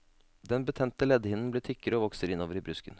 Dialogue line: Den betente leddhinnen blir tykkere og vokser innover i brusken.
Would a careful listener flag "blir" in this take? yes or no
no